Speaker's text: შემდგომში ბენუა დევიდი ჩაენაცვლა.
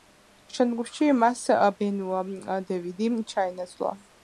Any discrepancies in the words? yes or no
yes